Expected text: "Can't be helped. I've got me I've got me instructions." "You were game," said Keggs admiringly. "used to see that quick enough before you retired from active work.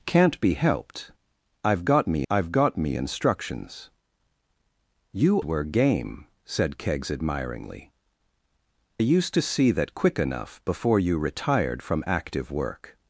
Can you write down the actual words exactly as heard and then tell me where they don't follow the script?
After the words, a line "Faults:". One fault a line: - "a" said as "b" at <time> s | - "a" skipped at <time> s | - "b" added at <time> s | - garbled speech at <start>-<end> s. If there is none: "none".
"Can't be helped. I've got me I've got me instructions." "You were game," said Keggs admiringly. "used to see that quick enough before you retired from active work.
Faults:
none